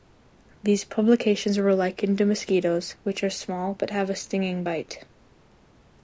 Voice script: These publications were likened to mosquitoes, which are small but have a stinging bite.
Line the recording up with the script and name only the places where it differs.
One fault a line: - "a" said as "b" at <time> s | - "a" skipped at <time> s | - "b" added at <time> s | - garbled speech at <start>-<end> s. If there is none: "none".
none